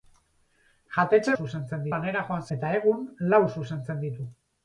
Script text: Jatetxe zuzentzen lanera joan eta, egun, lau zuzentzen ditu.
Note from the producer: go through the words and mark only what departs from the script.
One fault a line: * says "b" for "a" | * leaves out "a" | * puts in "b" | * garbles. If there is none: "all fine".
all fine